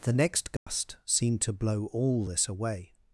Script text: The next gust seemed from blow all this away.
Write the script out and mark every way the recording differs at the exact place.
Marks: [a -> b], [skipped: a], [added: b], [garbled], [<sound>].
The next gust [dropout] seemed [from -> to] blow all this away.